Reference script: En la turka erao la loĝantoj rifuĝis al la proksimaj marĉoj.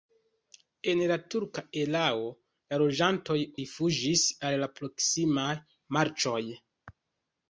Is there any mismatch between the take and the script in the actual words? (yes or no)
no